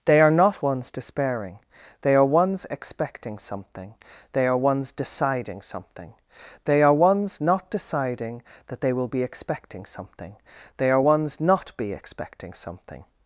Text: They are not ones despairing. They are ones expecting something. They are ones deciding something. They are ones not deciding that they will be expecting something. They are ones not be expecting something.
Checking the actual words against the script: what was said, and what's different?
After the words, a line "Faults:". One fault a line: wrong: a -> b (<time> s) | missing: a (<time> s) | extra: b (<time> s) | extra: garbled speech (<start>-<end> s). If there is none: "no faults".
They are not ones despairing. They are ones expecting something. They are ones deciding something. They are ones not deciding that they will be expecting something. They are ones not be expecting something.
Faults:
no faults